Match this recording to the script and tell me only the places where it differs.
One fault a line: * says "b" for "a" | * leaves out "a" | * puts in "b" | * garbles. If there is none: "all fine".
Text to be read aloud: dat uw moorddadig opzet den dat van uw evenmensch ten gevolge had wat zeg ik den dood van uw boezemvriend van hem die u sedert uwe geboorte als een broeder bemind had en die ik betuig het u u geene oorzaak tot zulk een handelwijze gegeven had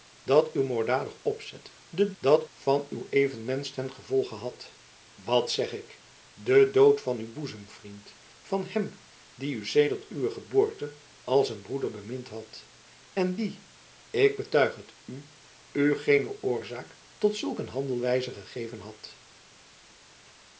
all fine